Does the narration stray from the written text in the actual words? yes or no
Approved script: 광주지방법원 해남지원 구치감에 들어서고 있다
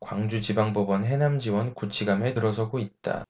no